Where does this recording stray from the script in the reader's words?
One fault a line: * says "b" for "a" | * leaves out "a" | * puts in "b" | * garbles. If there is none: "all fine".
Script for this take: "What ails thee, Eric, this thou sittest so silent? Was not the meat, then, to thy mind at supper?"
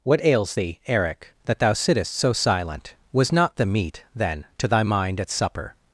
* says "that" for "this"